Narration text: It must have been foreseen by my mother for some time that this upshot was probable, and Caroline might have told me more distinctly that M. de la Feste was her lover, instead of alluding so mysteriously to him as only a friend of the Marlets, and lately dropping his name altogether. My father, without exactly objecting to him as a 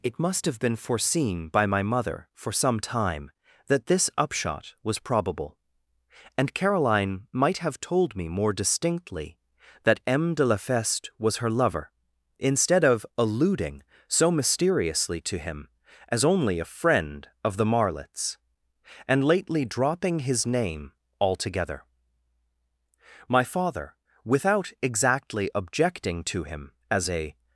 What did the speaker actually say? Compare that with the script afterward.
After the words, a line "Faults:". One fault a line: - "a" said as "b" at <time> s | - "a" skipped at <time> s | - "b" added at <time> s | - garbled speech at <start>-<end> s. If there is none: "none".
It must have been foreseen by my mother for some time that this upshot was probable, and Caroline might have told me more distinctly that M. de la Feste was her lover, instead of alluding so mysteriously to him as only a friend of the Marlets, and lately dropping his name altogether. My father, without exactly objecting to him as a
Faults:
none